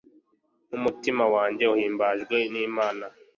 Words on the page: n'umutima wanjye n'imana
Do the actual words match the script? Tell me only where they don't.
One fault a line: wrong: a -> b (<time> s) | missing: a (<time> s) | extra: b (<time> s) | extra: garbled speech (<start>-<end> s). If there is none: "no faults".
extra: uhimbajwe (1.7 s)